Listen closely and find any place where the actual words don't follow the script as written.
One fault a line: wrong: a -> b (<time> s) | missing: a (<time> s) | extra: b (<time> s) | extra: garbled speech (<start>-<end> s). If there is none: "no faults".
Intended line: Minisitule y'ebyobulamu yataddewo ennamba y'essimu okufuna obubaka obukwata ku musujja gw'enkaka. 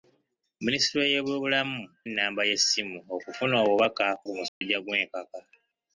missing: yataddewo (1.8 s)
missing: obukwata (4.1 s)